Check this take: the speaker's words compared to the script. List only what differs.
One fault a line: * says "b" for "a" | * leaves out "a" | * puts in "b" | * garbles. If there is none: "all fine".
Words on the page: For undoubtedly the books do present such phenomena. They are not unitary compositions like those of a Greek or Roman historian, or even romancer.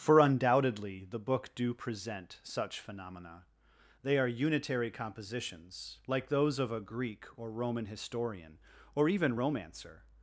* says "book" for "books"
* leaves out "not"